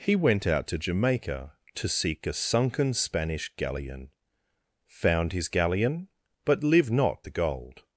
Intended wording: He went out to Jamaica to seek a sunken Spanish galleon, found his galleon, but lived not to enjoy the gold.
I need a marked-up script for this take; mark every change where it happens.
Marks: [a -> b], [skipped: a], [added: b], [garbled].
He went out to Jamaica to seek a sunken Spanish galleon, found his galleon, but lived not [skipped: to enjoy] the gold.